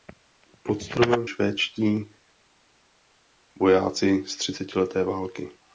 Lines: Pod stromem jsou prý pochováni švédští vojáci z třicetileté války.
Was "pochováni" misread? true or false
true